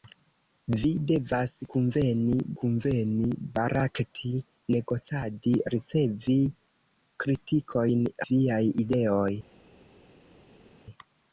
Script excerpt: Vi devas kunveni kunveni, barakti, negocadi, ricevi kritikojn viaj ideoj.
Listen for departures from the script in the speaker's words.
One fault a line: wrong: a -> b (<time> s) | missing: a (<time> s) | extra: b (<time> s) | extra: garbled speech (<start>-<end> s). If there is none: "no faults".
no faults